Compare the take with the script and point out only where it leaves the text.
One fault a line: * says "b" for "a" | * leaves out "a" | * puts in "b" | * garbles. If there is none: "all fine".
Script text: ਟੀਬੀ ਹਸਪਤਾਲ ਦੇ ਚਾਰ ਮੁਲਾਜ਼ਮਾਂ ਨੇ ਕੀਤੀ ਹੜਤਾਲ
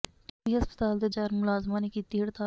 all fine